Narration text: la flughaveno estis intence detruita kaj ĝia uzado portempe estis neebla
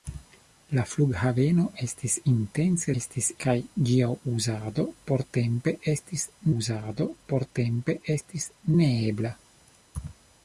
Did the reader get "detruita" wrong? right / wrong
wrong